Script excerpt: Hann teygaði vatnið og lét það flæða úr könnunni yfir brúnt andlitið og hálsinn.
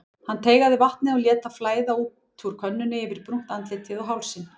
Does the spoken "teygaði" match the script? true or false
true